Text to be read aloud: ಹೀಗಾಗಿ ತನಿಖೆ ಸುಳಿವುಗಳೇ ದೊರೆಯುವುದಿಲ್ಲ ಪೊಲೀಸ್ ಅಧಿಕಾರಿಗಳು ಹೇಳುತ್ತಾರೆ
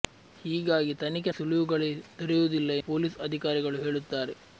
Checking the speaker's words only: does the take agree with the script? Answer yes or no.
yes